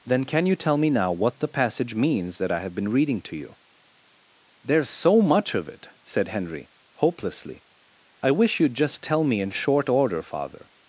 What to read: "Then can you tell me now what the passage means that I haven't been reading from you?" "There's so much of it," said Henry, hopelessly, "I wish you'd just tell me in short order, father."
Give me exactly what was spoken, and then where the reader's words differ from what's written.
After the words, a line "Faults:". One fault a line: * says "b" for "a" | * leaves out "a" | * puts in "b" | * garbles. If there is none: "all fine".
"Then can you tell me now what the passage means that I have been reading to you?" "There's so much of it," said Henry, hopelessly, "I wish you'd just tell me in short order, father."
Faults:
* says "have" for "haven't"
* says "to" for "from"